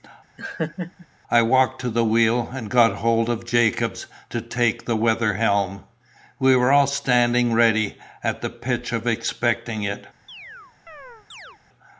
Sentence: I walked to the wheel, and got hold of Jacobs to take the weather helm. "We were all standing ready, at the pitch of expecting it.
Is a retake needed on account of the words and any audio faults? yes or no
yes